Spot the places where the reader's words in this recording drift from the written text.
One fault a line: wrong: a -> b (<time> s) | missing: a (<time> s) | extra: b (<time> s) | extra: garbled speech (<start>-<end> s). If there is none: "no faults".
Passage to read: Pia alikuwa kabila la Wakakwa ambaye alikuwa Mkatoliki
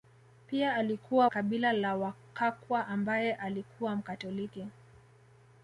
no faults